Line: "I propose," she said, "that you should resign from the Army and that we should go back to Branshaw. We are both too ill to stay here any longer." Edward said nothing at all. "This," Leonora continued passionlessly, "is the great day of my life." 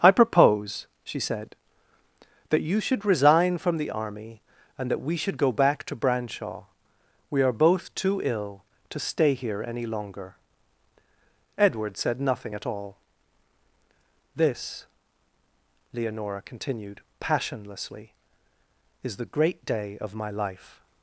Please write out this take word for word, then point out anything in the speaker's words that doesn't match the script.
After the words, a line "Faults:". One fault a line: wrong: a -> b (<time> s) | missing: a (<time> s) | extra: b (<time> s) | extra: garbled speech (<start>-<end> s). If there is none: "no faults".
"I propose," she said, "that you should resign from the Army and that we should go back to Branshaw. We are both too ill to stay here any longer." Edward said nothing at all. "This," Leonora continued passionlessly, "is the great day of my life."
Faults:
no faults